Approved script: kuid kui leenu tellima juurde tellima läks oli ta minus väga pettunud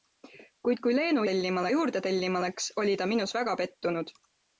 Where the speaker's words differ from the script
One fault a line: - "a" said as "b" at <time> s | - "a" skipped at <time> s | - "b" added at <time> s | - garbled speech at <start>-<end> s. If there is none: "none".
none